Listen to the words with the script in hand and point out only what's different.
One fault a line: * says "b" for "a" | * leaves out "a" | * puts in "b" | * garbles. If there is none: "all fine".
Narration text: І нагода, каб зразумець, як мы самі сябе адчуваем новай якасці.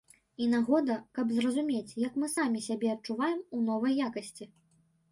* puts in "у"